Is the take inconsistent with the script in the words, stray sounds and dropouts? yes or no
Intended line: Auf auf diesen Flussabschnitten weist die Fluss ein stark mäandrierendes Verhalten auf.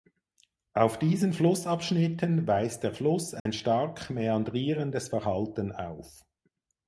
yes